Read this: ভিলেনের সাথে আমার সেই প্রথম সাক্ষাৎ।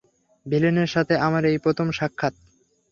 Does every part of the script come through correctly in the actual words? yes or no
no